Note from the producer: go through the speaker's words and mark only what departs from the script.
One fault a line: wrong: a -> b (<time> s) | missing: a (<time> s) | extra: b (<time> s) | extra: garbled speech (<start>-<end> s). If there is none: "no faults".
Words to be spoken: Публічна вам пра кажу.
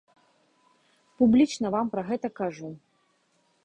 extra: гэта (2.1 s)